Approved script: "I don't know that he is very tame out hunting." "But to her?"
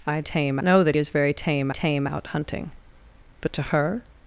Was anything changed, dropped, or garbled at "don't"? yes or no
yes